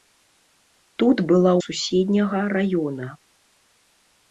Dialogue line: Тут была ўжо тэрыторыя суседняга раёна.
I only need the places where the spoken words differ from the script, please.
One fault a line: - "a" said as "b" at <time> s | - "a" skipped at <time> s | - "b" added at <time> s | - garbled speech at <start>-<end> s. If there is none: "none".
- "ўжо тэрыторыя" skipped at 1.5 s